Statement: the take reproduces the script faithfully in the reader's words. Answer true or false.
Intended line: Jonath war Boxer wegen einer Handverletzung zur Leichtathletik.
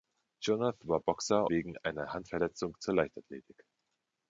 true